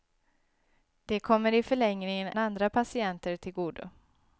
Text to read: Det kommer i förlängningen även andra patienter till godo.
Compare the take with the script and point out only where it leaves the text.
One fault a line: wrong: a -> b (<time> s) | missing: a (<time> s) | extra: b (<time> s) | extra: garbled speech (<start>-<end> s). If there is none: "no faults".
missing: även (2.3 s)